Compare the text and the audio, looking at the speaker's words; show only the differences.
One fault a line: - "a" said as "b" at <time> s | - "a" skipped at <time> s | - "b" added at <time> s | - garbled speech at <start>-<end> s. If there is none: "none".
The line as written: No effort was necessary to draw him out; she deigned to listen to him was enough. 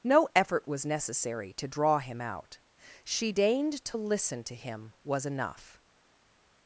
none